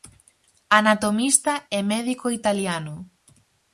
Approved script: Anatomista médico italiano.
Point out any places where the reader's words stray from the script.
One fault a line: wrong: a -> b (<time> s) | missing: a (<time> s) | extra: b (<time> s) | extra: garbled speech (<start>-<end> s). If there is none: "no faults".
extra: e (1.7 s)